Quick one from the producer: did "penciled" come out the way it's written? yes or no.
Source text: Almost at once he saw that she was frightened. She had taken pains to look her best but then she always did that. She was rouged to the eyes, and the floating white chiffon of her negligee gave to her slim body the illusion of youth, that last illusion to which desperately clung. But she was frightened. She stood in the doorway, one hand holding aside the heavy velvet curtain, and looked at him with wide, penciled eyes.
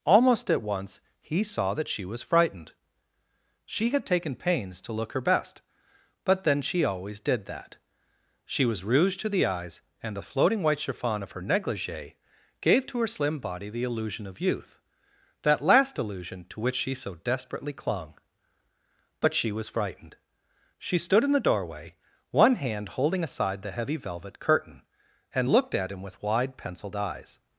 yes